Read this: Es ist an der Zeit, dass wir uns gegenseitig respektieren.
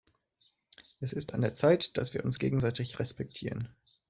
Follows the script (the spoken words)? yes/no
yes